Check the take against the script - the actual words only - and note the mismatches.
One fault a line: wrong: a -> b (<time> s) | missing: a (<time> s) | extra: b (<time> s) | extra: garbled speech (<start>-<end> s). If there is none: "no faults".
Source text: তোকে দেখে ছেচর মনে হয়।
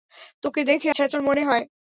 no faults